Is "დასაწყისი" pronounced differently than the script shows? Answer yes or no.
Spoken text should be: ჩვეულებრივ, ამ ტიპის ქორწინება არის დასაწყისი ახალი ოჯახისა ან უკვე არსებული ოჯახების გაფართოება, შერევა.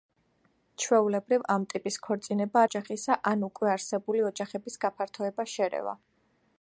yes